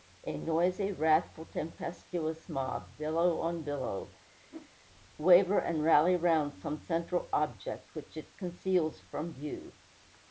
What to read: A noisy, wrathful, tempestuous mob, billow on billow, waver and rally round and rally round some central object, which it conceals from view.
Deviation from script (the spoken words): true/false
true